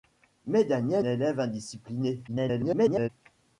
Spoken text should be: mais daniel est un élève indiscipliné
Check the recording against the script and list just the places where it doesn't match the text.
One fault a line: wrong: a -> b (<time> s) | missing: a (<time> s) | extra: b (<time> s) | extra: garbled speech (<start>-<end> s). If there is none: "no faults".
missing: est un (1.1 s)
extra: garbled speech (2.3-3.1 s)